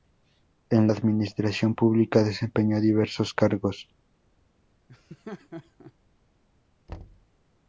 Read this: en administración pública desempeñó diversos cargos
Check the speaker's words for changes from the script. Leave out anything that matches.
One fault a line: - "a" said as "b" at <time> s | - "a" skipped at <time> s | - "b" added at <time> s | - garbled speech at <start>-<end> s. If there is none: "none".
none